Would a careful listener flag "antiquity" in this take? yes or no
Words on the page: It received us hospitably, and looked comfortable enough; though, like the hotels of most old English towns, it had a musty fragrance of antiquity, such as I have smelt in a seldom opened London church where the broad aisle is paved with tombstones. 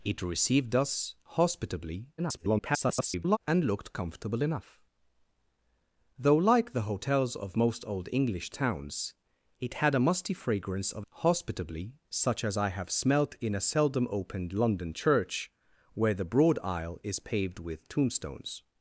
yes